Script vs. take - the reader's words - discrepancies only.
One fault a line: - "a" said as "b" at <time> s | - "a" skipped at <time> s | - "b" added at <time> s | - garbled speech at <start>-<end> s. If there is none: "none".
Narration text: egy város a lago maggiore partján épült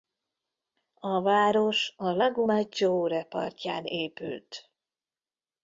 - "egy" said as "a" at 0.9 s